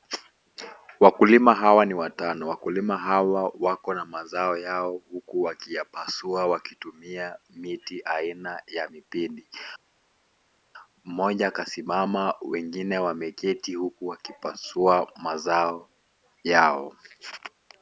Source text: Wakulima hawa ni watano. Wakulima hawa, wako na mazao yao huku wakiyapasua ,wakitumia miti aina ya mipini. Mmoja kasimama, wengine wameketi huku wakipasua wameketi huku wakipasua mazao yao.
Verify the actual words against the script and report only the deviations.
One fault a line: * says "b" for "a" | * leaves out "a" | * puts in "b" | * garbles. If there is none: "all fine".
* leaves out "wameketi huku wakipasua"